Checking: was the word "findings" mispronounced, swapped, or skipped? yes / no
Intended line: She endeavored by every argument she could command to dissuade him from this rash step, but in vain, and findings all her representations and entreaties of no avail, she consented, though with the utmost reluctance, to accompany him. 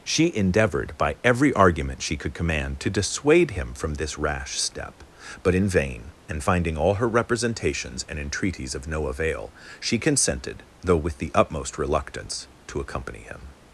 yes